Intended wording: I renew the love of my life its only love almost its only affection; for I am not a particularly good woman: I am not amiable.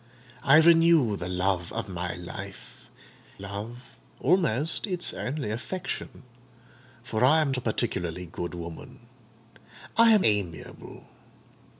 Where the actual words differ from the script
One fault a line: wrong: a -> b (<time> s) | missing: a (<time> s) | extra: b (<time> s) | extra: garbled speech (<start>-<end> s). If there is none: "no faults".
missing: its only (2.9 s)
missing: not (7.5 s)
missing: not (10.2 s)